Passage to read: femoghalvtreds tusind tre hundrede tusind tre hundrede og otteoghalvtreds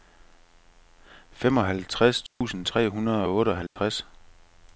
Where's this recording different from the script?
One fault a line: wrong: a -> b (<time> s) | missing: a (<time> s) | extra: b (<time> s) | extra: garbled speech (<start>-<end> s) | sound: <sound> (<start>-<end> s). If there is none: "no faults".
sound: dropout (2.3-2.4 s)
missing: tusind tre hundrede (3.2 s)
sound: dropout (3.7-3.8 s)